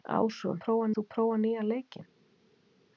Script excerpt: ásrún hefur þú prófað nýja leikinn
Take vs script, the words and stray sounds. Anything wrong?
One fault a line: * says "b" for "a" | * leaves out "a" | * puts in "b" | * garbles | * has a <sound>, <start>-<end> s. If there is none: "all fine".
* says "prófað" for "hefur"